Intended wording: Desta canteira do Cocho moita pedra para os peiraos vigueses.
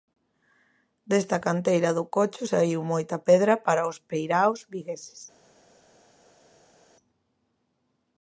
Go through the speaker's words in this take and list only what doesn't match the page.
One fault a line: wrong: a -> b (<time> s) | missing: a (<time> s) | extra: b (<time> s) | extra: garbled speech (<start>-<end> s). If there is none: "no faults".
extra: saíu (2.5 s)